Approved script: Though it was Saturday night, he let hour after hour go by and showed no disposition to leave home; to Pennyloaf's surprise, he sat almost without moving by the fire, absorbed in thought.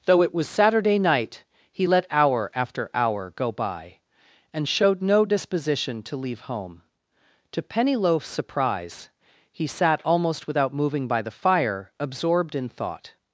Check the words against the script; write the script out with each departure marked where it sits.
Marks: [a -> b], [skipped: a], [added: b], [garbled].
Though it was Saturday night, he let hour after hour go by and showed no disposition to leave home; to Pennyloaf's surprise, he sat almost without moving by the fire, absorbed in thought.